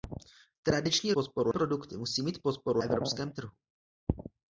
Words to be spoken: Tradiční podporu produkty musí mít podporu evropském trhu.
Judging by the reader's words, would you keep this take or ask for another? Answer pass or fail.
pass